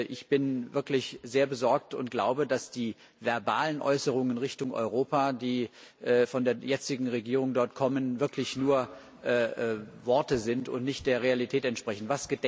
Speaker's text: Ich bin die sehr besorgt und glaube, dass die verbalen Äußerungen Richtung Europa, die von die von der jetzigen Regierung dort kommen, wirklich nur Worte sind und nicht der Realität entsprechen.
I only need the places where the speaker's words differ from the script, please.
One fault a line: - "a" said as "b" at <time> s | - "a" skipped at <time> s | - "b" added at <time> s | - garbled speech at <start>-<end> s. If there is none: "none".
- "die" said as "wirklich" at 0.7 s
- "die von" skipped at 6.4 s